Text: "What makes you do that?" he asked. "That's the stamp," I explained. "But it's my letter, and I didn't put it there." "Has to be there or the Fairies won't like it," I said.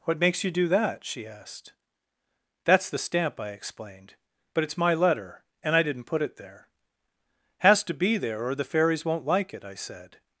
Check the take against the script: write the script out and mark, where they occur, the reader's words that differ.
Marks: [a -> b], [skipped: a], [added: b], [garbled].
"What makes you do that?" [he -> she] asked. "That's the stamp," I explained. "But it's my letter, and I didn't put it there." "Has to be there or the Fairies won't like it," I said.